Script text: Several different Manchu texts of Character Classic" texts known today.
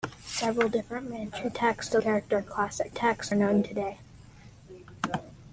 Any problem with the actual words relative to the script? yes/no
no